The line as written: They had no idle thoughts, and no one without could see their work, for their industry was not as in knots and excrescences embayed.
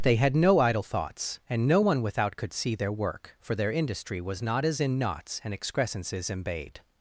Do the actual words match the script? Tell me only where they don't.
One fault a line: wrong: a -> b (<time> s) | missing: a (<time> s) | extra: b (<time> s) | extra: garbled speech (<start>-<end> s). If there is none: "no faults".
no faults